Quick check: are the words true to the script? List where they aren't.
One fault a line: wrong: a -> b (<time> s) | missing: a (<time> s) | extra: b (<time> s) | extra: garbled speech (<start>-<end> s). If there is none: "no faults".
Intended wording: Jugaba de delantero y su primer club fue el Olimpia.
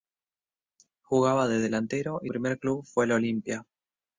missing: su (2.3 s)